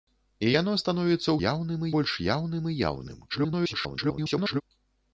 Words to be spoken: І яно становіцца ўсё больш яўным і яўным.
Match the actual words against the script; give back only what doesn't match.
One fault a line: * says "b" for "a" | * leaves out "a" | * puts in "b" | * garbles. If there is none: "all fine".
* says "яўным" for "ўсё"
* garbles